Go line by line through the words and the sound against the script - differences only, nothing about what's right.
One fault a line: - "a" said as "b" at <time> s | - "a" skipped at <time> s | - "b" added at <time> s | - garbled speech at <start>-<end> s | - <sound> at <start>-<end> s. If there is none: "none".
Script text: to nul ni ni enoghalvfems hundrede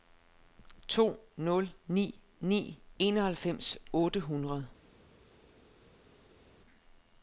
- "otte" added at 3.9 s